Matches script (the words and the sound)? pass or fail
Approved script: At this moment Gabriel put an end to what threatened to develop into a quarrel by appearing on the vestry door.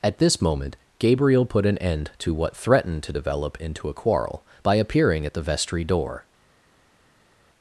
fail